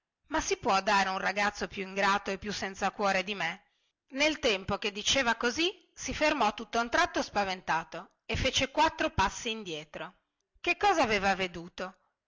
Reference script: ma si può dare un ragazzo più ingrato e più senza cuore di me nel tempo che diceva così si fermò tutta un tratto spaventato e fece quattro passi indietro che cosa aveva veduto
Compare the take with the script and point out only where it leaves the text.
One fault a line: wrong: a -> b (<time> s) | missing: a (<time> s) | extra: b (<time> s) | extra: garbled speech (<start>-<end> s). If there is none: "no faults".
no faults